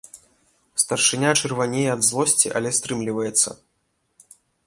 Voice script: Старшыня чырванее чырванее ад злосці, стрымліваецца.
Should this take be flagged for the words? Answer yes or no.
yes